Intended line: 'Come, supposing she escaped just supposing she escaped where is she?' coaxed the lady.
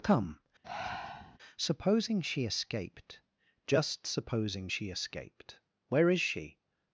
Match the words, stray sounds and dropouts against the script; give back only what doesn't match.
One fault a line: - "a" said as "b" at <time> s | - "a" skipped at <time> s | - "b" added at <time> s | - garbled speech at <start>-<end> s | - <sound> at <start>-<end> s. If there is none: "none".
- breath at 0.6-1.4 s
- "coaxed the lady" skipped at 6.6 s